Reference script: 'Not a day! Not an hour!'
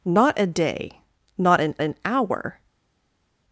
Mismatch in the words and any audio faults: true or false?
true